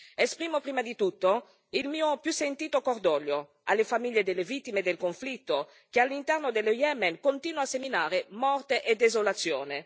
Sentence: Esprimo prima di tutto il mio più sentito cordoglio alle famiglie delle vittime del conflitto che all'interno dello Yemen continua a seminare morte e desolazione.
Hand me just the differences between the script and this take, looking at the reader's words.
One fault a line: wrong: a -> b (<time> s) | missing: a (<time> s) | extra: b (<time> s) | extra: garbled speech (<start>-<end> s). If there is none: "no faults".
no faults